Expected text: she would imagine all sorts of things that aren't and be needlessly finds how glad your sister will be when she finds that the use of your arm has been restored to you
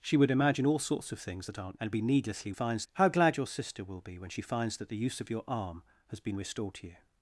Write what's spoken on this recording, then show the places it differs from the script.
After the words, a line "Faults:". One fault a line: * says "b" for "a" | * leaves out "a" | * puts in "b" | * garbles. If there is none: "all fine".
she would imagine all sorts of things that aren't and be needlessly finds how glad your sister will be when she finds that the use of your arm has been restored to you
Faults:
all fine